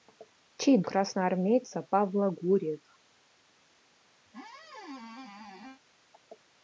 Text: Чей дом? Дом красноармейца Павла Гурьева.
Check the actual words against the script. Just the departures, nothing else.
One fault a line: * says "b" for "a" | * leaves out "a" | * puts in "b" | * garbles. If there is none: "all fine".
* leaves out "дом Дом"